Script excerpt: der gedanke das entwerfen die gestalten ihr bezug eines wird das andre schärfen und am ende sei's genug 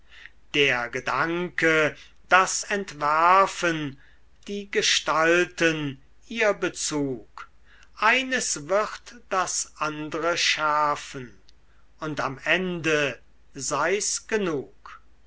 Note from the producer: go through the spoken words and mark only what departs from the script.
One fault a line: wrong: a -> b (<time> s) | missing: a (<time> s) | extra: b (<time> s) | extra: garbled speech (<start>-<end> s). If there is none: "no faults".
no faults